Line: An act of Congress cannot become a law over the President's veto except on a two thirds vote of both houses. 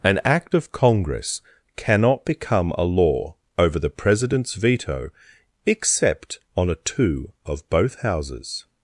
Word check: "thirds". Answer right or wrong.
wrong